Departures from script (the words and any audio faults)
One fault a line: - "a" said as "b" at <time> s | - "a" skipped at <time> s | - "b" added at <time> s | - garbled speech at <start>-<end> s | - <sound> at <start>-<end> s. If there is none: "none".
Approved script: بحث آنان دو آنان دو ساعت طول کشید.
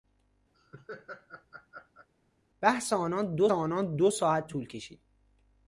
- laugh at 0.5-2.1 s